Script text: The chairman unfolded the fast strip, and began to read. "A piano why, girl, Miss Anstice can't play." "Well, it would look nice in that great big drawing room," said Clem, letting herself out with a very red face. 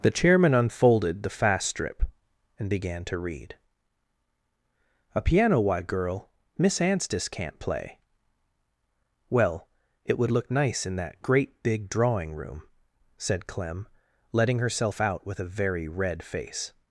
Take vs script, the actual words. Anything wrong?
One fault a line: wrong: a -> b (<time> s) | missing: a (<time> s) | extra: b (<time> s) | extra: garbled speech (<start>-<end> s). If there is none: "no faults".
no faults